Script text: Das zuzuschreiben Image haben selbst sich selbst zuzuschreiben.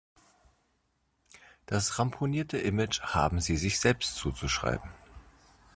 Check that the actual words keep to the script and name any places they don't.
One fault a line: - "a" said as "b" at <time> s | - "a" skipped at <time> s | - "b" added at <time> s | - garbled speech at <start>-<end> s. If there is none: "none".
- "zuzuschreiben" said as "ramponierte" at 2.0 s
- "selbst" said as "sie" at 3.4 s